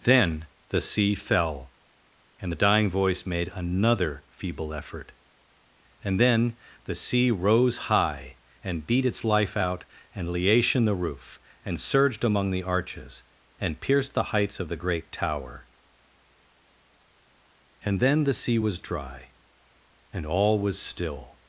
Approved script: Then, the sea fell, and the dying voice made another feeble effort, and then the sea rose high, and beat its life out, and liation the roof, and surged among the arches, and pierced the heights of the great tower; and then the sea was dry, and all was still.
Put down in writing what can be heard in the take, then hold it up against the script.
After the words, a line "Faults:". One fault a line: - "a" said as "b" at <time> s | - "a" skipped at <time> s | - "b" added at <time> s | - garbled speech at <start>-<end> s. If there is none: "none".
Then, the sea fell, and the dying voice made another feeble effort, and then the sea rose high, and beat its life out, and liation the roof, and surged among the arches, and pierced the heights of the great tower; and then the sea was dry, and all was still.
Faults:
none